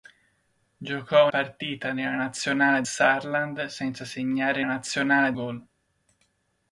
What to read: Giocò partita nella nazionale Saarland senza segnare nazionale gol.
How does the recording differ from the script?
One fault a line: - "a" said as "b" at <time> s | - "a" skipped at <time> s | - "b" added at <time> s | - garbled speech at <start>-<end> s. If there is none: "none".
none